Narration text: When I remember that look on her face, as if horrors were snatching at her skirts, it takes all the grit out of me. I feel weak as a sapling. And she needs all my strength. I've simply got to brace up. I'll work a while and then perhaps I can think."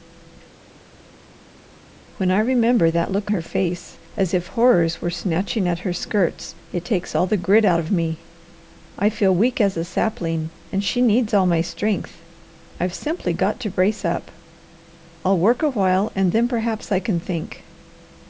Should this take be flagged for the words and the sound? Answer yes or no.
yes